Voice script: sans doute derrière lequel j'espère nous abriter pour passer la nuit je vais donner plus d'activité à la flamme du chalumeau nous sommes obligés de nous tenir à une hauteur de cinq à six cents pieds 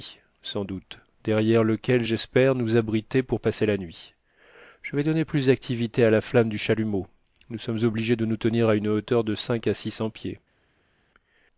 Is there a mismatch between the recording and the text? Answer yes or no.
no